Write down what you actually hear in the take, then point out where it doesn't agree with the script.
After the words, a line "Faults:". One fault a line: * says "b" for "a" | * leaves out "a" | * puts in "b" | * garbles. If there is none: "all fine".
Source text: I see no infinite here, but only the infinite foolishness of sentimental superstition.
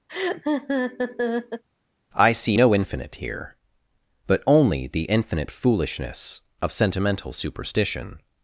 I see no infinite here, but only the infinite foolishness of sentimental superstition.
Faults:
all fine